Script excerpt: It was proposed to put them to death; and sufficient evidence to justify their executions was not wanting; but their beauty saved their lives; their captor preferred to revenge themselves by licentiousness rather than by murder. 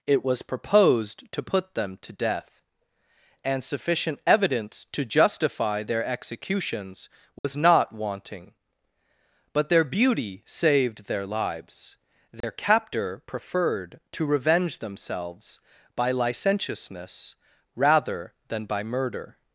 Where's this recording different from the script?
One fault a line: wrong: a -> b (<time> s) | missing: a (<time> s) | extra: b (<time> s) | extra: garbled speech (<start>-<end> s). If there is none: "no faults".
no faults